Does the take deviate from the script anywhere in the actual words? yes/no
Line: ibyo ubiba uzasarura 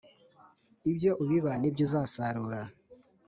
yes